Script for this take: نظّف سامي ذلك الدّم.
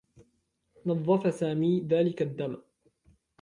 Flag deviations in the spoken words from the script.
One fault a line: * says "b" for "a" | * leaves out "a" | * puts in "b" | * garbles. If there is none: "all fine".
all fine